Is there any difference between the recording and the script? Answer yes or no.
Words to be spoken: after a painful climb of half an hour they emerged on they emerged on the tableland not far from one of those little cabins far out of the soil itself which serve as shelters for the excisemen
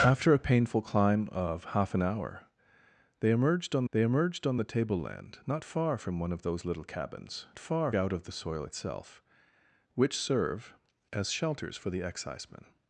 no